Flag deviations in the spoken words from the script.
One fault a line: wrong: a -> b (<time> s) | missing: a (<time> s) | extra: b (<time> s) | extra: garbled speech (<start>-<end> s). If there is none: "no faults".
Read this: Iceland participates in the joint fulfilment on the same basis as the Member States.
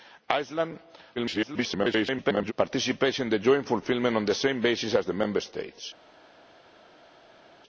extra: garbled speech (1.2-2.5 s)